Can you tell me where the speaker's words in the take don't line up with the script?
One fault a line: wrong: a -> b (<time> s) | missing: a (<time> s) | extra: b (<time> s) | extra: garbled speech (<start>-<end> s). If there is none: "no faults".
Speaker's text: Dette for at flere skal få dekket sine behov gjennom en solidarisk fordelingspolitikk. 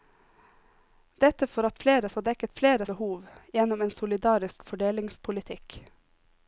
missing: skal (2.1 s)
wrong: sine -> flere (2.6 s)